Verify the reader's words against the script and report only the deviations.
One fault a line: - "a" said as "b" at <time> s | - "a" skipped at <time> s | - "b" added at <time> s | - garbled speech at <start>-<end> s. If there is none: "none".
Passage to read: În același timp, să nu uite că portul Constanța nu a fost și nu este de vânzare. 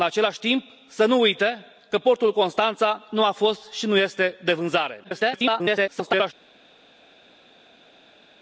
- garbled speech at 5.0-6.3 s